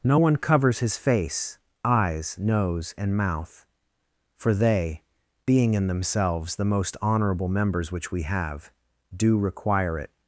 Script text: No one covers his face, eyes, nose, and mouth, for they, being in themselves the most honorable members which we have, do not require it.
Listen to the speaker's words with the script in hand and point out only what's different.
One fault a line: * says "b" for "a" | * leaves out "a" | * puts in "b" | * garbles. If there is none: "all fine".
* leaves out "not"